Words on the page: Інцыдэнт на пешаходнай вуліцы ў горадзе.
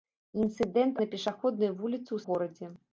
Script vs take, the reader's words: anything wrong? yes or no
no